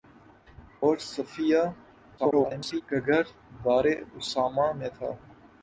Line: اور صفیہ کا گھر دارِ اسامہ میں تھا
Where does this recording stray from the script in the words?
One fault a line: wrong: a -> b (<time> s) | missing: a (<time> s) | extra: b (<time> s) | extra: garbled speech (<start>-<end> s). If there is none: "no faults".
extra: garbled speech (2.2-2.8 s)